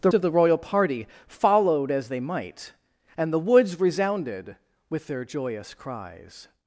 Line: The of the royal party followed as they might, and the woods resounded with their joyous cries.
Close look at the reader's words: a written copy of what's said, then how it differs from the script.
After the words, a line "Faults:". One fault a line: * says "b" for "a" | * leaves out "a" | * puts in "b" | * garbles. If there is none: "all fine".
The of the royal party followed as they might, and the woods resounded with their joyous cries.
Faults:
all fine